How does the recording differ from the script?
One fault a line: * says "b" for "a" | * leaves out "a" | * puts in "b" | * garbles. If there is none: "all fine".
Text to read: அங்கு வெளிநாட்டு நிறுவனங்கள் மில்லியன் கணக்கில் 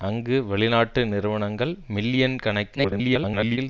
* garbles